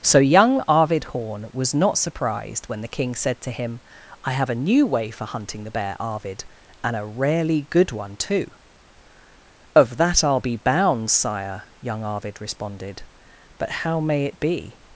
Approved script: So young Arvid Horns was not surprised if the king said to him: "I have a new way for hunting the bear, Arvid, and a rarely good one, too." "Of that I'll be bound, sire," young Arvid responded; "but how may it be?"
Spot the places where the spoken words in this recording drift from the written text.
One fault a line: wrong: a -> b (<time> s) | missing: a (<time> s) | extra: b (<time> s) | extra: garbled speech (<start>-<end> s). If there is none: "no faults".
wrong: Horns -> Horn (1.1 s)
wrong: if -> when (2.7 s)